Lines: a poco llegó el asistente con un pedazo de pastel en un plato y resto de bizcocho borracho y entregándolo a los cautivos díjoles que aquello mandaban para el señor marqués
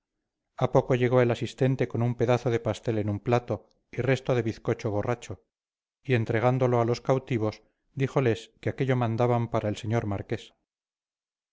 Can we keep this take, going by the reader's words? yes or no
yes